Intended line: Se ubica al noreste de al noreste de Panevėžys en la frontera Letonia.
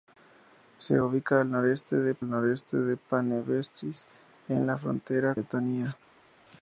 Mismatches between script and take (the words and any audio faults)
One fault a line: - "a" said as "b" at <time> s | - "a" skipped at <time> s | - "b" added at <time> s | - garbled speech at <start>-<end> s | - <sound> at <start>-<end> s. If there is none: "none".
none